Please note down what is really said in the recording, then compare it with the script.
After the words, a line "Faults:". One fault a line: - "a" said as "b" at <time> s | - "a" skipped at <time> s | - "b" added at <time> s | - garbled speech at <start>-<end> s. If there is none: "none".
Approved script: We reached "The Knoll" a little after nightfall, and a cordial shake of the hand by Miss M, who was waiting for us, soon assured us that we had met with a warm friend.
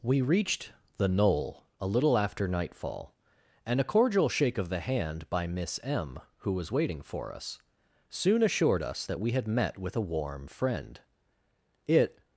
We reached "The Knoll" a little after nightfall, and a cordial shake of the hand by Miss M, who was waiting for us, soon assured us that we had met with a warm friend. It
Faults:
- "It" added at 11.9 s